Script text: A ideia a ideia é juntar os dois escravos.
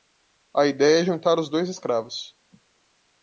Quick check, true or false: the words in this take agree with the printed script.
false